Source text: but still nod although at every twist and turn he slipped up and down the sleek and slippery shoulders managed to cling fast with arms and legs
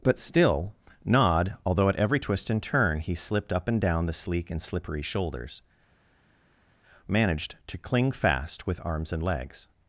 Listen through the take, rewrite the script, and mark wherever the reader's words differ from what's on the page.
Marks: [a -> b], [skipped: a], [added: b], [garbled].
but still nod although at every twist and turn he slipped up and down the sleek and slippery shoulders managed to cling fast with arms and legs